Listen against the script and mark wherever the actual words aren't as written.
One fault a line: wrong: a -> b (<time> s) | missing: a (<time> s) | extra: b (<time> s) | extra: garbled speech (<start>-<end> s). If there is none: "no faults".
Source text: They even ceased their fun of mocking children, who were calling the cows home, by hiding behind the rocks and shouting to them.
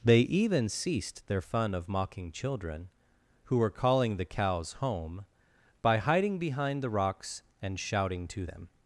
no faults